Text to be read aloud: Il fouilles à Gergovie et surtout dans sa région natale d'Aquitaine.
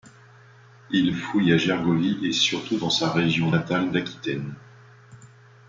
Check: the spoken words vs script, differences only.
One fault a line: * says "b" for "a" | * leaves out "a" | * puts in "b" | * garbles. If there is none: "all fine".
all fine